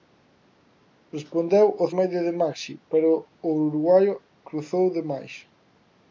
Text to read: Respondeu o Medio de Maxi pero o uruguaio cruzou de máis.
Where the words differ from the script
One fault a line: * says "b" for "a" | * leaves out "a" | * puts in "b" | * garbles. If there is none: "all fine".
all fine